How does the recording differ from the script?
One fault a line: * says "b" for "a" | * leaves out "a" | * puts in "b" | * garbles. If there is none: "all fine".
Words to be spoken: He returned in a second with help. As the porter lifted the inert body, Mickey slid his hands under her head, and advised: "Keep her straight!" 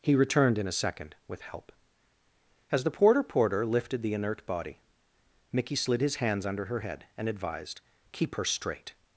* puts in "porter"